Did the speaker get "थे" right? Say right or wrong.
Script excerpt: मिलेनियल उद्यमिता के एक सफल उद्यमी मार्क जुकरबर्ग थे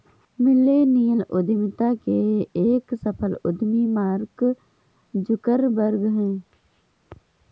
wrong